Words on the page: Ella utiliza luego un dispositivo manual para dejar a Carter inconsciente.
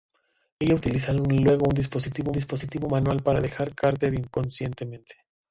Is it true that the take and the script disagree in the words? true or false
true